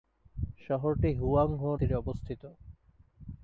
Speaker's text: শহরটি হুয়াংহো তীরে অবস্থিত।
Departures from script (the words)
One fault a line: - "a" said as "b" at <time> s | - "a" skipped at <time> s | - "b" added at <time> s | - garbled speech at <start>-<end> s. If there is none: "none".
none